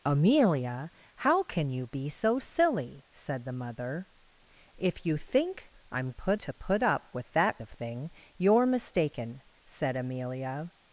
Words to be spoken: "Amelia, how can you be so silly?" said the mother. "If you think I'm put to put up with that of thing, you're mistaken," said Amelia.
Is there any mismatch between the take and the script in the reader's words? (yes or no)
no